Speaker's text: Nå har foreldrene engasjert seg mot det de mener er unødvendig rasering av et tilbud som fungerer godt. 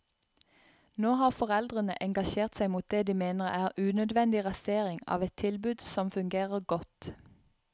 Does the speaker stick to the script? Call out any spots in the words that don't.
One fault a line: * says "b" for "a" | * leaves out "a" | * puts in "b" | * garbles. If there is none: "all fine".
all fine